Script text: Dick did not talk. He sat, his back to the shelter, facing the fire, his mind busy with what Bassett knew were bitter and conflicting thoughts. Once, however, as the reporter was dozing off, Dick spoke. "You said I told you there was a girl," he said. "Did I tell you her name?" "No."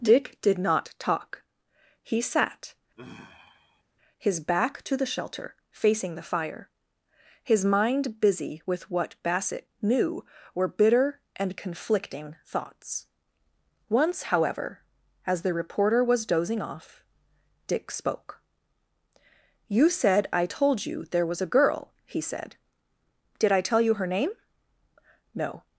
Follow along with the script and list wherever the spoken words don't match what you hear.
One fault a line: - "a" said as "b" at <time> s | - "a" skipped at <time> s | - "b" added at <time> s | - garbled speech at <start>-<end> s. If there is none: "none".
none